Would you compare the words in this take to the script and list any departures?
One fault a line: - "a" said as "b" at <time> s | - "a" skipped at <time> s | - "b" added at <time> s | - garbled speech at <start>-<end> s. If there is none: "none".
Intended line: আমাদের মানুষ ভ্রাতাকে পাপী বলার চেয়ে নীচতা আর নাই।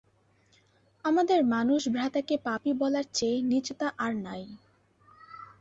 none